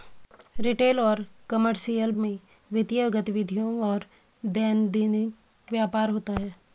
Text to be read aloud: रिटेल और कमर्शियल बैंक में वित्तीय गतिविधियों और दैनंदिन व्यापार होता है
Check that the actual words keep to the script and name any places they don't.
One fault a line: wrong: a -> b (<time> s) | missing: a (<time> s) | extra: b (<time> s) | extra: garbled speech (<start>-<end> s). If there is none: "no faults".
missing: बैंक (2.1 s)